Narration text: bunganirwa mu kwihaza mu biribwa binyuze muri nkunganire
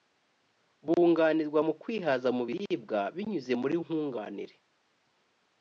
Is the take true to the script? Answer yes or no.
yes